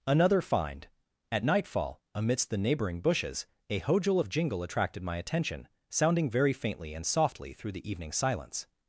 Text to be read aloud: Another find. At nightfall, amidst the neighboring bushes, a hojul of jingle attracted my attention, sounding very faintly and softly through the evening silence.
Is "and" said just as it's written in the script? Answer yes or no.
yes